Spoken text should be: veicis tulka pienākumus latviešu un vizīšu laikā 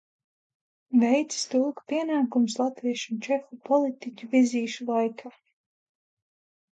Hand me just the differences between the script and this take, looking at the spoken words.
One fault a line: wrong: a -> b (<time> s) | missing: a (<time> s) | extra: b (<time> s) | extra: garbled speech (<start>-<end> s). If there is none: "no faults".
extra: čehu politiķu (3.3 s)